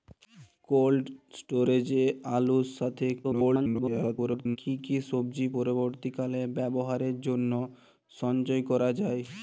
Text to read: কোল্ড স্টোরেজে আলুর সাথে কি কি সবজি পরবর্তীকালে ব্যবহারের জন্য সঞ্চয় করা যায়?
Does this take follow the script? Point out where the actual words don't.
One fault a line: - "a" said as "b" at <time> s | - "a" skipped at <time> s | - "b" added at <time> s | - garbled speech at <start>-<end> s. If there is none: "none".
- garbled speech at 3.2-4.6 s